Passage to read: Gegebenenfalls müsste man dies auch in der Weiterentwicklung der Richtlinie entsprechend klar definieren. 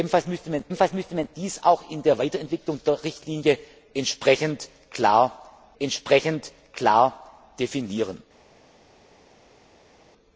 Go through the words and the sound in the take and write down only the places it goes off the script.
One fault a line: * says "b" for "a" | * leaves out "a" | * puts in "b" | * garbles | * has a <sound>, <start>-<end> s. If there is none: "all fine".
* puts in "gegebenenfalls müsste man"
* puts in "entsprechend klar"